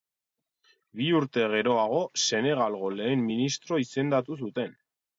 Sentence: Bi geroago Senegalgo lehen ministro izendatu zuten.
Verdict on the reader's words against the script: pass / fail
fail